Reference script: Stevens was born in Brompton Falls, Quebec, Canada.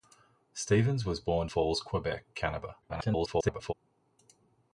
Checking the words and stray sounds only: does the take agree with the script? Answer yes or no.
no